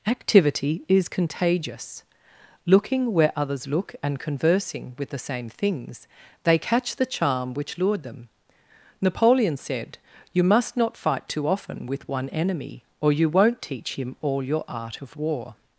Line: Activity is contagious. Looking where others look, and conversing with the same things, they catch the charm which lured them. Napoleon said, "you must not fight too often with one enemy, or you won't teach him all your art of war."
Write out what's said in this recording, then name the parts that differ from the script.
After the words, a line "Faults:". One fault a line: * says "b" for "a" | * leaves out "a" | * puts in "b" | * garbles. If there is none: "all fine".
Activity is contagious. Looking where others look, and conversing with the same things, they catch the charm which lured them. Napoleon said, "you must not fight too often with one enemy, or you won't teach him all your art of war."
Faults:
all fine